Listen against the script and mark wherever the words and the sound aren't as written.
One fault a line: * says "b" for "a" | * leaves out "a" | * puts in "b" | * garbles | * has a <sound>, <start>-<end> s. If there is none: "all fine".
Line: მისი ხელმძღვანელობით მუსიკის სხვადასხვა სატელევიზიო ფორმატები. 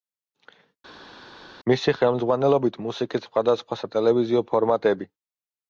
all fine